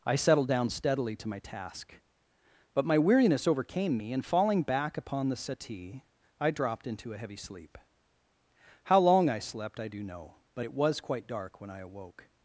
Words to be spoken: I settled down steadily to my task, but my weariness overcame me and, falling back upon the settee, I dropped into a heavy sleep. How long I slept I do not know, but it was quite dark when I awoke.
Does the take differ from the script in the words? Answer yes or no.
yes